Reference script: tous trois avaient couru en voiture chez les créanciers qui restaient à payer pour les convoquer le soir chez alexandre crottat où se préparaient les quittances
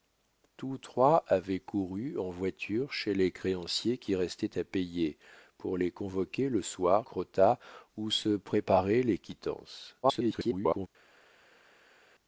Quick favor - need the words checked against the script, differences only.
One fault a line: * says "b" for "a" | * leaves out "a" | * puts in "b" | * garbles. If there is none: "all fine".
* leaves out "chez alexandre"
* garbles